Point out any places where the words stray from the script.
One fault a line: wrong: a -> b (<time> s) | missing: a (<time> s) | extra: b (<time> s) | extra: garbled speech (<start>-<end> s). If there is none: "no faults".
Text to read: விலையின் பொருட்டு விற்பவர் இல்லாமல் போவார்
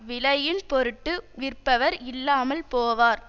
no faults